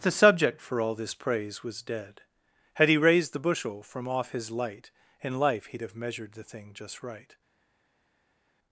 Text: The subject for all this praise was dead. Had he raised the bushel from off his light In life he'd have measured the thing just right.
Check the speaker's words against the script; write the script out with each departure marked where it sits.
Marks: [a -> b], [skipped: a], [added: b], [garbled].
The subject for all this praise was dead. Had he raised the bushel from off his light In life he'd have measured the thing just right.